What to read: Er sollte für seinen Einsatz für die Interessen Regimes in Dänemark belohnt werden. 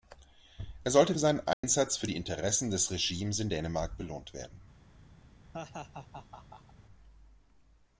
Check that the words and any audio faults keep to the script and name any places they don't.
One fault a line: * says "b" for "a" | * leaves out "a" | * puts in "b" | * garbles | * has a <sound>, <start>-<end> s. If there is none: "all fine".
* has a dropout, 1.5-1.6 s
* puts in "des"
* has a laugh, 5.5-6.7 s